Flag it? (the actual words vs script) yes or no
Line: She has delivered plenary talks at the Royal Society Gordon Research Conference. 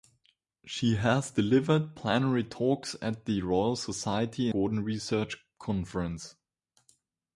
no